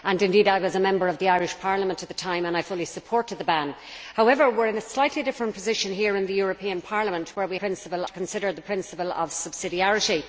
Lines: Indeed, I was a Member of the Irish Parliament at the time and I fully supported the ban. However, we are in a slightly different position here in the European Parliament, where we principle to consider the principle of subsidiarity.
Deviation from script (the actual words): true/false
false